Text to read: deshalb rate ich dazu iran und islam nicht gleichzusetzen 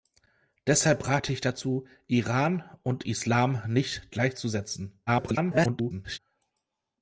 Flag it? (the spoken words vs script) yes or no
yes